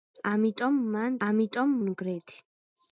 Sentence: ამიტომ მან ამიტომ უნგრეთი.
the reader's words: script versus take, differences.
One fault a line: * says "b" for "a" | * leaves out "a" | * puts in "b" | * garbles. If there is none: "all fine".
all fine